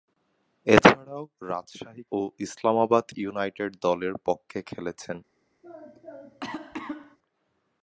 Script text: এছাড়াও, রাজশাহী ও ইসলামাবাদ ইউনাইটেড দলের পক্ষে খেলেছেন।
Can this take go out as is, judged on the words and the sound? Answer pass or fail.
fail